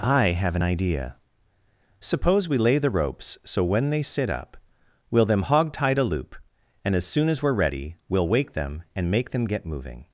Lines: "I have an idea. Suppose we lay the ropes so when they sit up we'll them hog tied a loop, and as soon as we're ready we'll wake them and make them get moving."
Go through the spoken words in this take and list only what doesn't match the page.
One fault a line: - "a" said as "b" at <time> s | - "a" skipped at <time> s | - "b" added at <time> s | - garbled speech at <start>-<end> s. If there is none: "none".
none